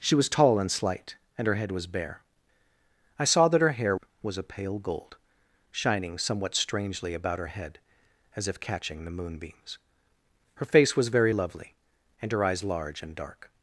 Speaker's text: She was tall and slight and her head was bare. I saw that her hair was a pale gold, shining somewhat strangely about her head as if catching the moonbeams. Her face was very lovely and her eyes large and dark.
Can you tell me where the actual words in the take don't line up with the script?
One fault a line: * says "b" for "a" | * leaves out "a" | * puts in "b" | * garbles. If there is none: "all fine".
all fine